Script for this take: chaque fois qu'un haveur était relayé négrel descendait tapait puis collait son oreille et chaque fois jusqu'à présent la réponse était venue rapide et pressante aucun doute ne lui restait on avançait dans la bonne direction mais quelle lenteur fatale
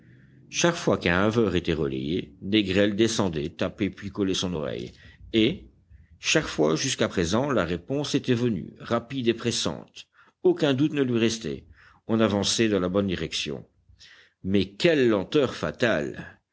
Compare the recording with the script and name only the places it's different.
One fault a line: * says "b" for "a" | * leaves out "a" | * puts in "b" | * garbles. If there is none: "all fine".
all fine